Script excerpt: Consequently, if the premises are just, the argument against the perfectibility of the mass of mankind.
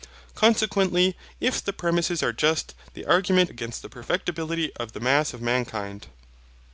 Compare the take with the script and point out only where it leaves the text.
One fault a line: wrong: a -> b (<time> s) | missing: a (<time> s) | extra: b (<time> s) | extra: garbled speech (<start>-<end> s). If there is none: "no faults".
no faults